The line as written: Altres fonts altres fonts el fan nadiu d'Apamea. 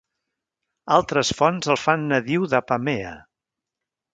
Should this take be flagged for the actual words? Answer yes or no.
yes